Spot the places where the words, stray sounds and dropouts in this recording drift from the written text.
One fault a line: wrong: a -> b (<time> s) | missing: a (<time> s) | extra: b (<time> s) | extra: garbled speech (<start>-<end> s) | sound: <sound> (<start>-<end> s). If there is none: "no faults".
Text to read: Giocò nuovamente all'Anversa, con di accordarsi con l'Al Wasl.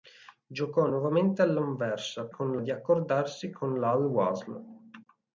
no faults